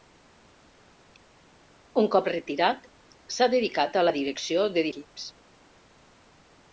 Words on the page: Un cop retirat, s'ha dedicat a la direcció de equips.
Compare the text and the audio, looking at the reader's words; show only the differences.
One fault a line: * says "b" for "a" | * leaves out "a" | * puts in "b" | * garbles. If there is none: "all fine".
all fine